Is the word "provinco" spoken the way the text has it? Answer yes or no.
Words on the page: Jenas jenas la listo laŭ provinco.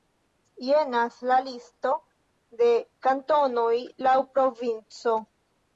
yes